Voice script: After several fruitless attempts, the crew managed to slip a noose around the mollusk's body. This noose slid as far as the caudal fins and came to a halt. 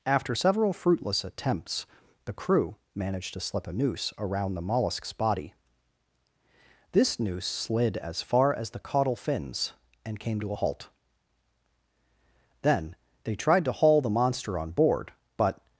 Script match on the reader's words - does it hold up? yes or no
no